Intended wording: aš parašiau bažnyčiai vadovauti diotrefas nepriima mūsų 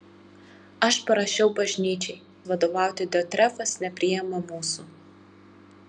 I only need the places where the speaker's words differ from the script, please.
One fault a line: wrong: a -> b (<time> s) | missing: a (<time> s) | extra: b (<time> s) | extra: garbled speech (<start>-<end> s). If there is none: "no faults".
no faults